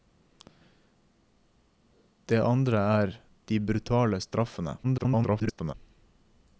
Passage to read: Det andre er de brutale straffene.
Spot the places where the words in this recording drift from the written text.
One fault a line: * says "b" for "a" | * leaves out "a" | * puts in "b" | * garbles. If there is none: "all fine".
* garbles